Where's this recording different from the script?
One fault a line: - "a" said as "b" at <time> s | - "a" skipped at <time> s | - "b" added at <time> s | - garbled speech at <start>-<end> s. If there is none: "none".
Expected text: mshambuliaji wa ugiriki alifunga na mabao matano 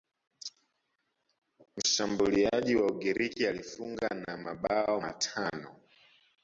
none